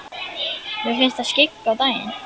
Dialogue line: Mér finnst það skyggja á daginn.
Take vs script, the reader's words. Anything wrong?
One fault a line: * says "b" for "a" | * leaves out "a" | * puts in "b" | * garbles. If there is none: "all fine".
all fine